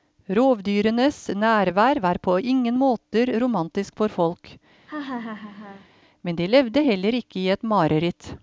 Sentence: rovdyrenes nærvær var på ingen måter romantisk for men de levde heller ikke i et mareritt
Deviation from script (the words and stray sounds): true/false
true